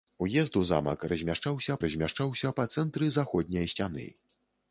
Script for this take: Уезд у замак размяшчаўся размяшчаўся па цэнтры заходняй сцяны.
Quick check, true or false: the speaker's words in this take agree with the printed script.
true